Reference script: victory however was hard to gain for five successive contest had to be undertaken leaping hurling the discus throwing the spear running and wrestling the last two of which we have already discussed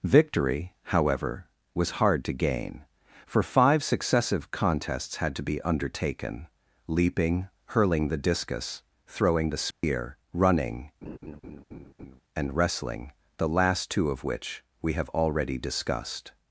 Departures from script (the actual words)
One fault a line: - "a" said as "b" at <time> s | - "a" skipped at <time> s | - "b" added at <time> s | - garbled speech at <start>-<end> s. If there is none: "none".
- "contest" said as "contests" at 4.5 s